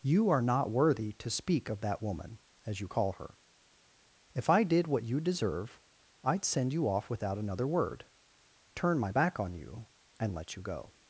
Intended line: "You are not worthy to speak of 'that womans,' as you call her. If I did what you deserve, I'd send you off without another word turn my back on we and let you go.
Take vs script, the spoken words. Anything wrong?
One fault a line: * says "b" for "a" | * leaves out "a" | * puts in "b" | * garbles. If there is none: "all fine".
* says "woman" for "womans"
* says "you" for "we"